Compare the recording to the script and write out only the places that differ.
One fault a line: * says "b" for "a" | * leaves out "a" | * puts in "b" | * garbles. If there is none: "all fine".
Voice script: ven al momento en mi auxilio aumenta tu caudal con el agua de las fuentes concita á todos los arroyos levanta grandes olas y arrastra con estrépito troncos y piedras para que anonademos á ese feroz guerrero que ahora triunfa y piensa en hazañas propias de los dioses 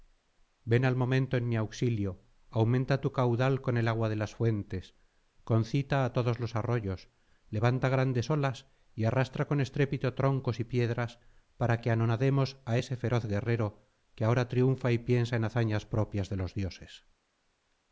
all fine